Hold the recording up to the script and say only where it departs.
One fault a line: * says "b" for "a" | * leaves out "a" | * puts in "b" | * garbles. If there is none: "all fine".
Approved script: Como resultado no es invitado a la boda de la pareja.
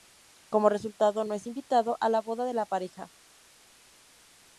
all fine